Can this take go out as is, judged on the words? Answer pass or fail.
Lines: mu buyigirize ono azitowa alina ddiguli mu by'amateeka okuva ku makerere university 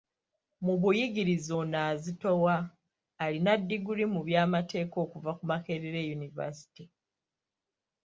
pass